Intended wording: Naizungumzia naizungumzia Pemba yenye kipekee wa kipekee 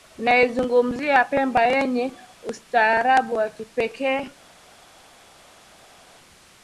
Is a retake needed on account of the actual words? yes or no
yes